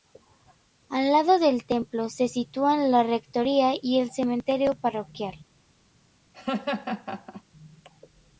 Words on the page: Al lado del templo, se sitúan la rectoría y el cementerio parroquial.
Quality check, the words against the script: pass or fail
pass